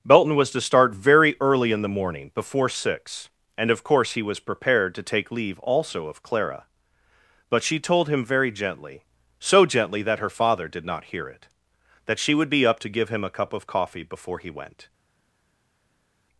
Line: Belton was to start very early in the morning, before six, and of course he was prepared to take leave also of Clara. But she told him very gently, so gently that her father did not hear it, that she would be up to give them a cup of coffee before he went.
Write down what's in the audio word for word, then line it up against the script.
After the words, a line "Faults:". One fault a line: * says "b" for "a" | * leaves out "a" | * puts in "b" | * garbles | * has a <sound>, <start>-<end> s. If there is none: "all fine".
Belton was to start very early in the morning, before six, and of course he was prepared to take leave also of Clara. But she told him very gently, so gently that her father did not hear it, that she would be up to give him a cup of coffee before he went.
Faults:
* says "him" for "them"